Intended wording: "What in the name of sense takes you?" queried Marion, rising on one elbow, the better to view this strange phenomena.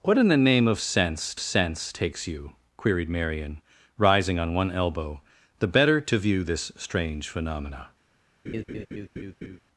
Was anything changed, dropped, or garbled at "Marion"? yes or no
no